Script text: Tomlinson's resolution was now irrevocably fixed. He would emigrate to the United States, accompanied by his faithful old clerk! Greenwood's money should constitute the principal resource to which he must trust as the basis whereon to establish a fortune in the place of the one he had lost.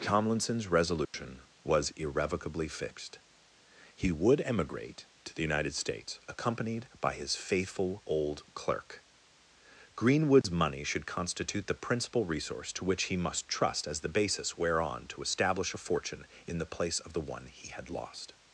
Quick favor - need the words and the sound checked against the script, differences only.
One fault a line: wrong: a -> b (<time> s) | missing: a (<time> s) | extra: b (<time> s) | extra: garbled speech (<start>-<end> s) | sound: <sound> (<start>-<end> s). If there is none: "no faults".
sound: dropout (1.0-1.1 s)
missing: now (1.9 s)
sound: dropout (10.4-10.4 s)